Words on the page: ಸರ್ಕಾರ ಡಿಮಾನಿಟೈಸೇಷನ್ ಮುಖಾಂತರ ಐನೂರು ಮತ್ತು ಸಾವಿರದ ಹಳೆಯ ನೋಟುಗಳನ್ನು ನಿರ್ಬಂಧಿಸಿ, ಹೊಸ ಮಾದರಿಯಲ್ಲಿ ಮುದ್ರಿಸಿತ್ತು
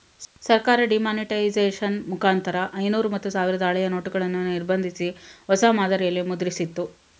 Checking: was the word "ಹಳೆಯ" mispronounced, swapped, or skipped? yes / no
no